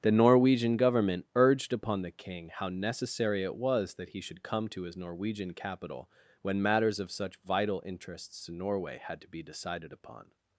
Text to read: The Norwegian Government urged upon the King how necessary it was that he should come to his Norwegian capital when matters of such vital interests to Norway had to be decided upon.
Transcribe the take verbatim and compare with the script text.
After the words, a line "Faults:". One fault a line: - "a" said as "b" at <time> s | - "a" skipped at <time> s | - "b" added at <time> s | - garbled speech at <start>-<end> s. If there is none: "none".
The Norwegian Government urged upon the King how necessary it was that he should come to his Norwegian capital when matters of such vital interests to Norway had to be decided upon.
Faults:
none